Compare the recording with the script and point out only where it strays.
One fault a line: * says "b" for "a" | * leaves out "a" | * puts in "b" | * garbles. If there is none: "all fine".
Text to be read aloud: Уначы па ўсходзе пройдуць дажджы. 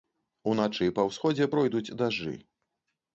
all fine